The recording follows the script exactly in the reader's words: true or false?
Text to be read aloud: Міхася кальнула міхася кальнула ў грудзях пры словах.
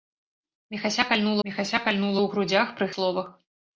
true